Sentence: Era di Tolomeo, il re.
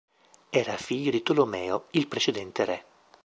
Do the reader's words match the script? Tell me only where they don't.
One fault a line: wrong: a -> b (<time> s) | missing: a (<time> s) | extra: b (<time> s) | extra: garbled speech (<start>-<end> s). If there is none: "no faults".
extra: figlio (0.8 s)
extra: precedente (2.1 s)